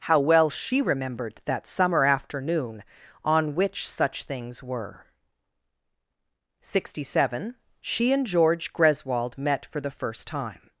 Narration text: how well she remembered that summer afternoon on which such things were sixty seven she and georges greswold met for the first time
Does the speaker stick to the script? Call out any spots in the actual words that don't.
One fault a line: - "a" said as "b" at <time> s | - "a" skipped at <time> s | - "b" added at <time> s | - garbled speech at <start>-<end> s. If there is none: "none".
- "georges" said as "george" at 8.2 s